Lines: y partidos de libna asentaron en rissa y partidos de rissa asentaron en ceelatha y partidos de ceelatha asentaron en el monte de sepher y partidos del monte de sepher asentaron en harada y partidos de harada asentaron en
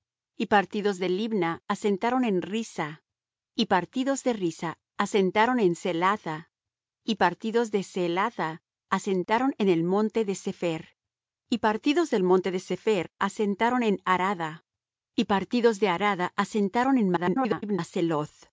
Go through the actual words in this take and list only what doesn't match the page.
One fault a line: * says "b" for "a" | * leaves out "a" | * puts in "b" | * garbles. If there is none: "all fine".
* garbles